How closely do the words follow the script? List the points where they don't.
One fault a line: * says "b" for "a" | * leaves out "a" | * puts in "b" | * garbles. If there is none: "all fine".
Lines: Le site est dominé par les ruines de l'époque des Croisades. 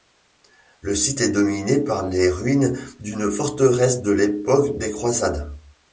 * puts in "d'une forteresse"